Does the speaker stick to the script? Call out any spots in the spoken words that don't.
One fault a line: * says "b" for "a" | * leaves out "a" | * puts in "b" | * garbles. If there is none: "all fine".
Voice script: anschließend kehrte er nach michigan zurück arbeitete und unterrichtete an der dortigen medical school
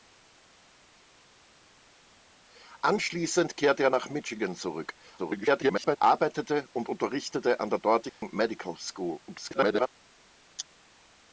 * garbles
* garbles